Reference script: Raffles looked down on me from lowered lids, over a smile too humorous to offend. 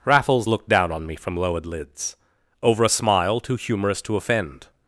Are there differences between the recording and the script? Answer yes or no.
no